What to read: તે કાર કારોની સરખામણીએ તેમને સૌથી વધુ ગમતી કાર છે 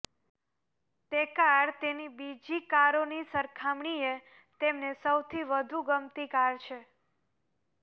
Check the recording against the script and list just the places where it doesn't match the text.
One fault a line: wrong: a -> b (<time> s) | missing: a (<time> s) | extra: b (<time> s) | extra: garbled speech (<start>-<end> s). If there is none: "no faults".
extra: તેની બીજી (1.8 s)